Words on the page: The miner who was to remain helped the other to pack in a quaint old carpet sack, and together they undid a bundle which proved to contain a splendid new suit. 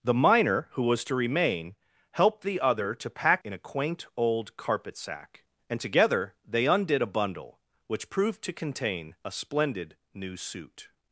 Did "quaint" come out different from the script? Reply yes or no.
no